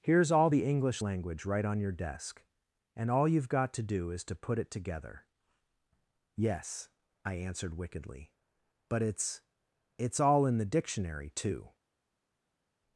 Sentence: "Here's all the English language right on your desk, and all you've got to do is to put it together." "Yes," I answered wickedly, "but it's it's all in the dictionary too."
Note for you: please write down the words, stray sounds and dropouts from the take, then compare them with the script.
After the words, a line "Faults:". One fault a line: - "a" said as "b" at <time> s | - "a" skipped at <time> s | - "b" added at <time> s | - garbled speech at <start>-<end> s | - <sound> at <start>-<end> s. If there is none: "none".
"Here's all the English language right on your desk, and all you've got to do is to put it together." "Yes," I answered wickedly, "but it's it's all in the dictionary too."
Faults:
none